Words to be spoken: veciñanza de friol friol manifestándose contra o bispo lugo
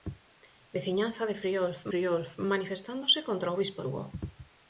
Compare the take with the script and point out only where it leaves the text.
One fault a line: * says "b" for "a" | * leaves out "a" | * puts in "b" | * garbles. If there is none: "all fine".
all fine